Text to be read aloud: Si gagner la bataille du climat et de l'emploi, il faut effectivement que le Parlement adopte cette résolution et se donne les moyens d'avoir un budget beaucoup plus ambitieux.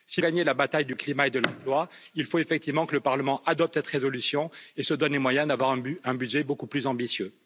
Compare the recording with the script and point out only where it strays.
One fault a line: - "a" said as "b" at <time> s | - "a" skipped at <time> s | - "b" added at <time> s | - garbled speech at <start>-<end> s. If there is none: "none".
none